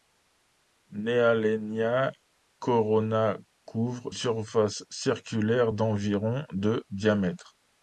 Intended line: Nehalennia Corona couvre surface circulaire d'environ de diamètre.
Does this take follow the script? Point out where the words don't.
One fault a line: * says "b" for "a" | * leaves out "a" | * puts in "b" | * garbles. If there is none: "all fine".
all fine